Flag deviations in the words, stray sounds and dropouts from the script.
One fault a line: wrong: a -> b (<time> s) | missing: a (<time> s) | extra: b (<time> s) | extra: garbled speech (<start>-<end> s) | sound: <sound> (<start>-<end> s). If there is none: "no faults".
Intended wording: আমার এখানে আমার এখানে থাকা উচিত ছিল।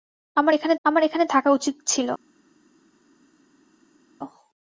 no faults